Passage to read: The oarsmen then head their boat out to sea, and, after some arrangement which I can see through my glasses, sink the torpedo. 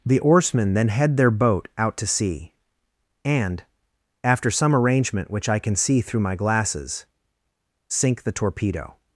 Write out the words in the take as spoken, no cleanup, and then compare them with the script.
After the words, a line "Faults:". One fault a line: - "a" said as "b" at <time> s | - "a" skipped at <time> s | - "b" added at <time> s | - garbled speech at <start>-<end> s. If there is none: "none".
The oarsmen then head their boat out to sea, and, after some arrangement which I can see through my glasses, sink the torpedo.
Faults:
none